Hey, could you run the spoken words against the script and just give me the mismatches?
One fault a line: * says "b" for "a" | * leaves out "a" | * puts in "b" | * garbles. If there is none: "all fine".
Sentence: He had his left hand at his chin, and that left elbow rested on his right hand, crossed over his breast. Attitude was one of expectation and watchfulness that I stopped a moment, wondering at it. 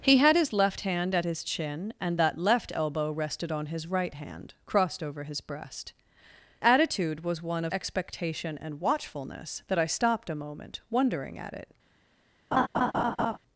all fine